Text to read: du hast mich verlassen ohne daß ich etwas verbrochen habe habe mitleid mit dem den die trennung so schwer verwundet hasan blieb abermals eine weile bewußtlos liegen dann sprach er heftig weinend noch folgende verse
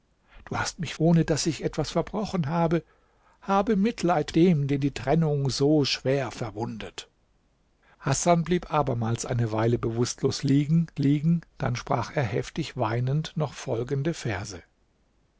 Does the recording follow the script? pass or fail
fail